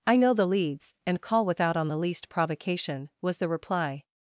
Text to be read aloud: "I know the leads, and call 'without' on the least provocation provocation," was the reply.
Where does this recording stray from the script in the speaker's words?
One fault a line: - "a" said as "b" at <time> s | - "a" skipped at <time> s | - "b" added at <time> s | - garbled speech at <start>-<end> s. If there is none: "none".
- "provocation" skipped at 3.1 s